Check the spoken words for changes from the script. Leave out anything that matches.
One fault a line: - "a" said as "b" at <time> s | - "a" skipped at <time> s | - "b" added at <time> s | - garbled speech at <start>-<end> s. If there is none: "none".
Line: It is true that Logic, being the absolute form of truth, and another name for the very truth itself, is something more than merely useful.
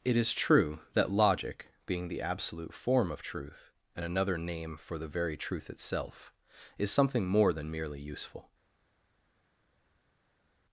none